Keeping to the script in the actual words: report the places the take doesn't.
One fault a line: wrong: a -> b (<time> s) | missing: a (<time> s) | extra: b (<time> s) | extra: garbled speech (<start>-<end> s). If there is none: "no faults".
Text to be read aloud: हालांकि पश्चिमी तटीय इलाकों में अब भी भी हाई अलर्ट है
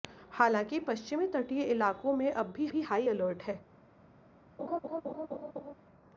no faults